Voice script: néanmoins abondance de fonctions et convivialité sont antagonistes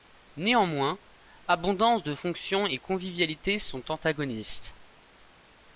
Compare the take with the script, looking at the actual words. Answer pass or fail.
pass